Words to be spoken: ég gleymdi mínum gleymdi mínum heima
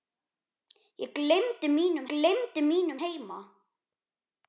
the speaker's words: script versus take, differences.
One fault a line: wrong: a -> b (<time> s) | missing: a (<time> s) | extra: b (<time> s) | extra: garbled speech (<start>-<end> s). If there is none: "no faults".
no faults